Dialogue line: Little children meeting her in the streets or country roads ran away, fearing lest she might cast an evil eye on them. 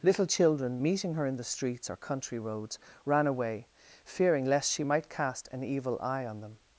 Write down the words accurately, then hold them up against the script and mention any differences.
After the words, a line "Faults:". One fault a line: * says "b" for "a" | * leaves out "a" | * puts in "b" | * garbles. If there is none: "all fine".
Little children meeting her in the streets or country roads ran away, fearing lest she might cast an evil eye on them.
Faults:
all fine